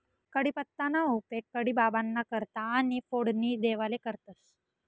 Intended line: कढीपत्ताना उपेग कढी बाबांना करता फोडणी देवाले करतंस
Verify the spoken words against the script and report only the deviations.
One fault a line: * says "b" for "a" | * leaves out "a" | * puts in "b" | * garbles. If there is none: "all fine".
* puts in "आणि"